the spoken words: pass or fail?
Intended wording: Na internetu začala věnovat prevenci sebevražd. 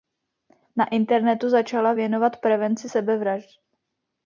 pass